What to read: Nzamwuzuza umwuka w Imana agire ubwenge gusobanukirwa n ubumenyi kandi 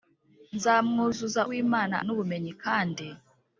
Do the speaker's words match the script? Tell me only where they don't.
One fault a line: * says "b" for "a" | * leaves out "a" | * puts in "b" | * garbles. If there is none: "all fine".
* leaves out "umwuka"
* leaves out "agire ubwenge gusobanukirwa"